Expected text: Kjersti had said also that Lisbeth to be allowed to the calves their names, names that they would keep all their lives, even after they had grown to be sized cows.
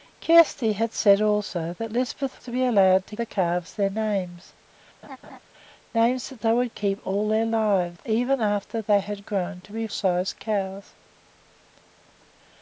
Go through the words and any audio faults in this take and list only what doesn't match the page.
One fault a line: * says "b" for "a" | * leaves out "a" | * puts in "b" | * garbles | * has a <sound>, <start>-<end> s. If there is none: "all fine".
* has a laugh, 5.0-5.4 s